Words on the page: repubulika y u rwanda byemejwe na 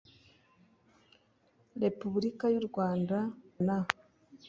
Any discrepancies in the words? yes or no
yes